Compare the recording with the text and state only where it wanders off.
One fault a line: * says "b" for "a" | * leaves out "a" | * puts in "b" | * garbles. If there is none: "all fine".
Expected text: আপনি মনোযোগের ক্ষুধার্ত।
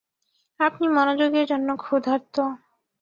* puts in "জন্য"